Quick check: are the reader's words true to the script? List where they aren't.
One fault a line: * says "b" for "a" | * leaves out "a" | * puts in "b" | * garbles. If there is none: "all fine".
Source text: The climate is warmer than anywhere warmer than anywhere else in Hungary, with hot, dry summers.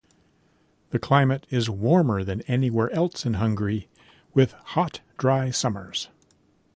* leaves out "warmer than anywhere"